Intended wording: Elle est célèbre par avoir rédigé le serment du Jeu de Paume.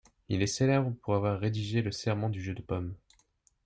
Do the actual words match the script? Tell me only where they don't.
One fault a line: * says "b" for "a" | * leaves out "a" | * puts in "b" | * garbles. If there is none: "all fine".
* says "Il" for "Elle"
* says "pour" for "par"